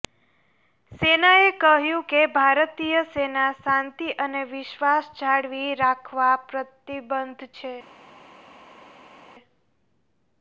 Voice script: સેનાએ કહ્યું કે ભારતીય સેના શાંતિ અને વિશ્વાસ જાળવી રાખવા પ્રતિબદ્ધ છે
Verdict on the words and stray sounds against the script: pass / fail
pass